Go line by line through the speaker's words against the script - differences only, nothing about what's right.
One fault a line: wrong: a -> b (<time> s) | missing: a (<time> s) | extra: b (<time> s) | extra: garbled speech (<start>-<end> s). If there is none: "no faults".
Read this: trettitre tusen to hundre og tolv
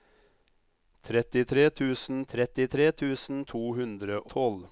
extra: trettitre tusen (2.3 s)
missing: og (4.2 s)